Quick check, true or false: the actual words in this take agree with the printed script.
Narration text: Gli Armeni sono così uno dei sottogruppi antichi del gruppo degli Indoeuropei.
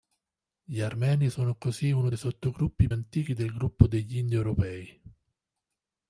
true